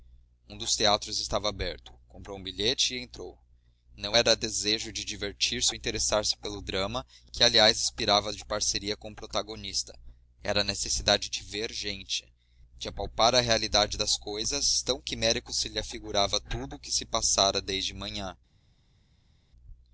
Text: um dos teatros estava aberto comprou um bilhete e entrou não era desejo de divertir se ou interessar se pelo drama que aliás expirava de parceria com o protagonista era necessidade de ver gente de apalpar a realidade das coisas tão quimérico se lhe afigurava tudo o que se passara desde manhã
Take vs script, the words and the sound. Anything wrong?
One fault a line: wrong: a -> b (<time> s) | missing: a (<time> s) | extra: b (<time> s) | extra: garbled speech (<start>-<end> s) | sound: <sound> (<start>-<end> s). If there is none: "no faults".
no faults